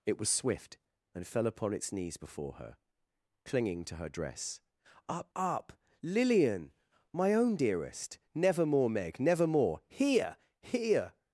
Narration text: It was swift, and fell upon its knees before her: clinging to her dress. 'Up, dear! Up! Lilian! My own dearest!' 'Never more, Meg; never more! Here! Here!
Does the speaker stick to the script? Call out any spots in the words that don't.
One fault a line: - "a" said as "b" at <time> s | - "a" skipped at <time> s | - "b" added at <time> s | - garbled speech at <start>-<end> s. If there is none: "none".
- "dear" skipped at 5.3 s